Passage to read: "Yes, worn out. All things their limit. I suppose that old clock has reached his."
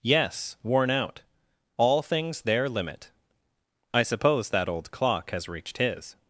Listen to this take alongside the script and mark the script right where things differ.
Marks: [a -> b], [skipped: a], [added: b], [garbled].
"Yes, worn out. All things their limit. I suppose that old clock has reached his."